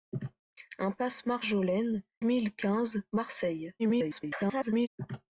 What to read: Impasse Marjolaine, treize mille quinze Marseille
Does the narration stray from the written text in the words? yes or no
yes